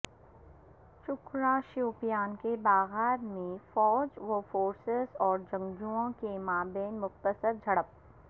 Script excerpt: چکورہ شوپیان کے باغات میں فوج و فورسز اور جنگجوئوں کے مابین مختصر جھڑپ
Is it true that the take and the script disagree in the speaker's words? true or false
false